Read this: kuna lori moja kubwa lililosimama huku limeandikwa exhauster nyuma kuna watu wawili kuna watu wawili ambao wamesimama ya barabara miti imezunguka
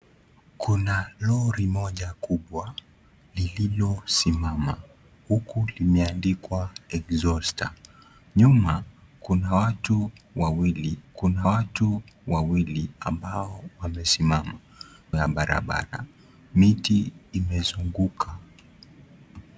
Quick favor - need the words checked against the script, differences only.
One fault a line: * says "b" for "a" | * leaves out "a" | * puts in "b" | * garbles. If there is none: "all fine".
all fine